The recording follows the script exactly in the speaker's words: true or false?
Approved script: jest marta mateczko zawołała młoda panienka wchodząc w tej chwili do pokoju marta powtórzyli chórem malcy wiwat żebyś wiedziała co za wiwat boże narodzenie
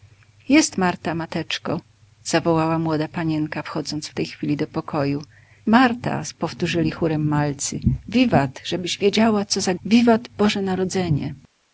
true